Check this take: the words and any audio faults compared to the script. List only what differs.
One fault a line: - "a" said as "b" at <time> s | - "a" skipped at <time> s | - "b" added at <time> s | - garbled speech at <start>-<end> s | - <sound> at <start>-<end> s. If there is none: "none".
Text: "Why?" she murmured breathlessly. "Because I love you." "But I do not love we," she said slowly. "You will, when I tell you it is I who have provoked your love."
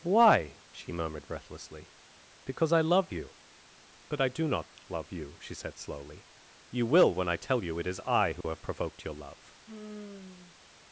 - "we" said as "you" at 5.1 s
- dropout at 8.4-8.4 s
- sigh at 9.7-10.7 s